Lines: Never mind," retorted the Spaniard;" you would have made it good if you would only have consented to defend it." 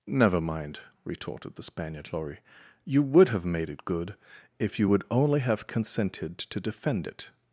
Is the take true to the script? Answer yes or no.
no